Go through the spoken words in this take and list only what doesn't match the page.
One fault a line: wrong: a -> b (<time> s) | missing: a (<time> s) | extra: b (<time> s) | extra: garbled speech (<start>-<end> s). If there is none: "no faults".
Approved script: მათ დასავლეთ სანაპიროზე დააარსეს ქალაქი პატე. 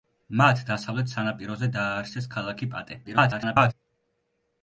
extra: garbled speech (3.0-3.7 s)